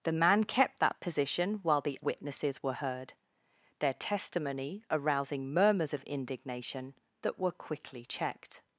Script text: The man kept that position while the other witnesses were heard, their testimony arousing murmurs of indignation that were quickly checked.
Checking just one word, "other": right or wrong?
wrong